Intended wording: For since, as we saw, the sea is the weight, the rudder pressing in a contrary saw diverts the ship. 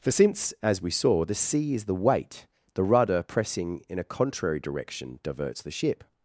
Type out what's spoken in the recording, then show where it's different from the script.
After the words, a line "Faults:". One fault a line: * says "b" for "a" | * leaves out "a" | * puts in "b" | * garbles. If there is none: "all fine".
For since, as we saw, the sea is the weight, the rudder pressing in a contrary direction diverts the ship.
Faults:
* says "direction" for "saw"